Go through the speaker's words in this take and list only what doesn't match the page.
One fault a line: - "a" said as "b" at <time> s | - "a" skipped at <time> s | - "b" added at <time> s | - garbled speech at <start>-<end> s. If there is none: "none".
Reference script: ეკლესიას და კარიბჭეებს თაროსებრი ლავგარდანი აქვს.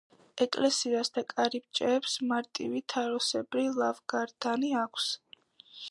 - "მარტივი" added at 2.3 s